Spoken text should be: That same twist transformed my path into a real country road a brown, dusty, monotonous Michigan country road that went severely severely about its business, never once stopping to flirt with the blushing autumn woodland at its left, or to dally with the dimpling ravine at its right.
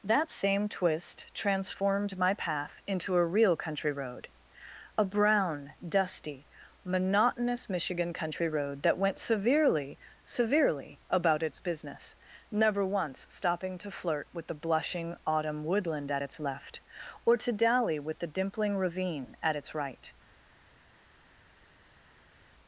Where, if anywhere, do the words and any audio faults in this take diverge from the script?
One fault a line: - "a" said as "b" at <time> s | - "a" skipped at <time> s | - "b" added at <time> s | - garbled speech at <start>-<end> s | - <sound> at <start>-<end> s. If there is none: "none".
none